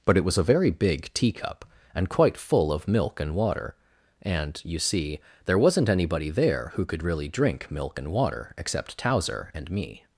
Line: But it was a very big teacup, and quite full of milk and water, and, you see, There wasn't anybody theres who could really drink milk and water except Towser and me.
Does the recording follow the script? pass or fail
fail